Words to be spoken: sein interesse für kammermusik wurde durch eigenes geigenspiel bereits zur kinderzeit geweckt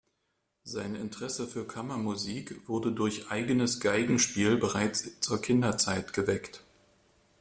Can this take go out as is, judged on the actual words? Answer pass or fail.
pass